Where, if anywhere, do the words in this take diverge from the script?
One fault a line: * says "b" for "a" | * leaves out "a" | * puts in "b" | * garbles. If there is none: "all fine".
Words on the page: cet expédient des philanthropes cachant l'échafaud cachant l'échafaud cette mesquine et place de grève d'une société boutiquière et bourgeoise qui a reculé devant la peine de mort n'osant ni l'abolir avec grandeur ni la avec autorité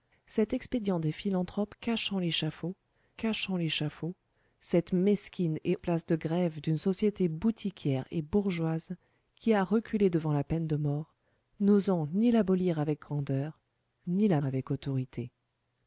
all fine